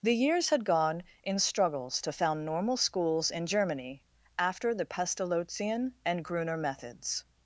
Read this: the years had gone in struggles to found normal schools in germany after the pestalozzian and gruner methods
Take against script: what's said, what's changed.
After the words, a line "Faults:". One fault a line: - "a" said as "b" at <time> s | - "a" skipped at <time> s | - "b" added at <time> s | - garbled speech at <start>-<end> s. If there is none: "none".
the years had gone in struggles to found normal schools in germany after the pestalozzian and gruner methods
Faults:
none